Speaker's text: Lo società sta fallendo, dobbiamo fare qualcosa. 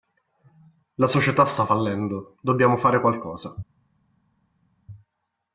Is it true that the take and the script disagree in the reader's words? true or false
true